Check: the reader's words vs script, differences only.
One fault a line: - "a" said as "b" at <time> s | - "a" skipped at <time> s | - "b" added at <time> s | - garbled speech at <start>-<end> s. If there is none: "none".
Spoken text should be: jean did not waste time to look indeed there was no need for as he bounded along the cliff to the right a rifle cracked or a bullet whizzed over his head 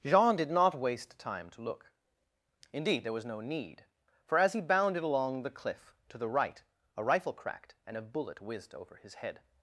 - "or" said as "and" at 7.9 s